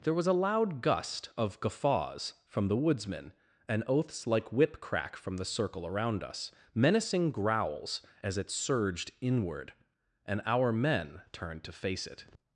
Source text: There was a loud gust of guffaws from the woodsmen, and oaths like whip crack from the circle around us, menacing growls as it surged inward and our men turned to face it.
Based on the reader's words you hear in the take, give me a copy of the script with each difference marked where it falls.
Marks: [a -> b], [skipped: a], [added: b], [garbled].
There was a loud gust of guffaws from the woodsmen, and oaths like whip crack from the circle around us, menacing growls as it surged inward and our men turned to face it.